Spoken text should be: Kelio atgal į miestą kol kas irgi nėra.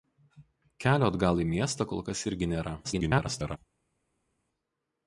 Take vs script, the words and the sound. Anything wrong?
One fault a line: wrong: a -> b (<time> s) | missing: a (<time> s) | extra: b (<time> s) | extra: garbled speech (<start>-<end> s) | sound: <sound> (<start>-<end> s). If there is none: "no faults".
extra: garbled speech (2.8-3.6 s)